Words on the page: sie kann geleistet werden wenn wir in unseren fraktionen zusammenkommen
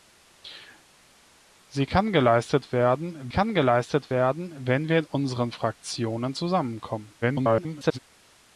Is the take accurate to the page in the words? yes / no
no